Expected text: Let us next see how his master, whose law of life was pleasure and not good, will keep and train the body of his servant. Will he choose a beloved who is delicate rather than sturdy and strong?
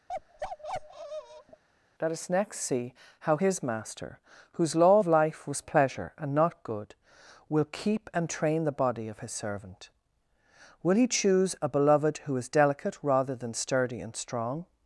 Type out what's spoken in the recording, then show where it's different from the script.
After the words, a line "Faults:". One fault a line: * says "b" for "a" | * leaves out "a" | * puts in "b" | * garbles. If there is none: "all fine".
Let us next see how his master, whose law of life was pleasure and not good, will keep and train the body of his servant. Will he choose a beloved who is delicate rather than sturdy and strong?
Faults:
all fine